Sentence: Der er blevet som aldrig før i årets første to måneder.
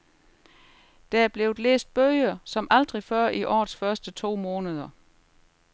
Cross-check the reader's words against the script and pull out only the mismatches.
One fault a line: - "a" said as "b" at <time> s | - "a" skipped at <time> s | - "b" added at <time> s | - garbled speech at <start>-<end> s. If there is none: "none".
- "læst bøger" added at 1.6 s